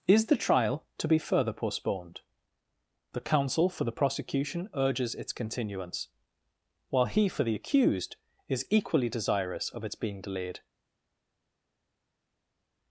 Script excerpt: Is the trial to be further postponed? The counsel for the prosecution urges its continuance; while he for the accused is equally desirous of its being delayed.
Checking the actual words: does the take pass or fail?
pass